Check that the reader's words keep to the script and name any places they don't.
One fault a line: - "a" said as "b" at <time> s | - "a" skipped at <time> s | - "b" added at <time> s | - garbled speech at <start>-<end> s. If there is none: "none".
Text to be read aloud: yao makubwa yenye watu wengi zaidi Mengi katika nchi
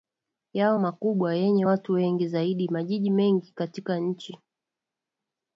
- "Majiji" added at 2.7 s